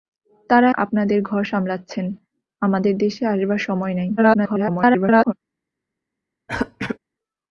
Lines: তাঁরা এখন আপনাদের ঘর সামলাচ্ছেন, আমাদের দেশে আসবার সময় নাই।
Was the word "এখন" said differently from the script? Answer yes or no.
yes